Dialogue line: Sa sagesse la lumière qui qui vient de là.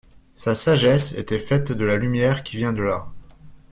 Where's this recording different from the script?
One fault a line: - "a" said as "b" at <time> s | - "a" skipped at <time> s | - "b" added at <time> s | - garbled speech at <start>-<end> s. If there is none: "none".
- "était faite de" added at 1.1 s
- "qui" skipped at 2.6 s